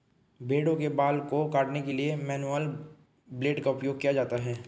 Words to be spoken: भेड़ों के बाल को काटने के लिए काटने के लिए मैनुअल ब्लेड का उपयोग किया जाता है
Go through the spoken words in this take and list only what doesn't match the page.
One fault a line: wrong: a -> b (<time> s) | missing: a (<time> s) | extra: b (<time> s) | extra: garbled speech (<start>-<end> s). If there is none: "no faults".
missing: काटने के लिए (2.2 s)